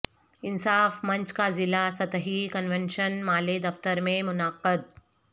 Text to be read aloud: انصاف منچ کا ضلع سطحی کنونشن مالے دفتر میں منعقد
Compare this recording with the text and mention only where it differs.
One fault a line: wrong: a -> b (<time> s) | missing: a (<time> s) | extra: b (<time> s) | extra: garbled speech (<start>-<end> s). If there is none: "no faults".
no faults